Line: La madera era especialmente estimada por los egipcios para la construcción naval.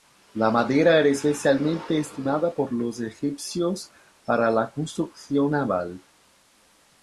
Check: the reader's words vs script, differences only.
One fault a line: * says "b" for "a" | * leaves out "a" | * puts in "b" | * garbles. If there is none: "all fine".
all fine